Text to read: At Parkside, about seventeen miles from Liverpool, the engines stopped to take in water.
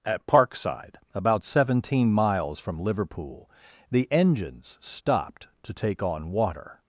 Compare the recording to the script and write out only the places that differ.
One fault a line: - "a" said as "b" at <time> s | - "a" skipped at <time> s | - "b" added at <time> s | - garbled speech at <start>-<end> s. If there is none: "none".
- "in" said as "on" at 6.0 s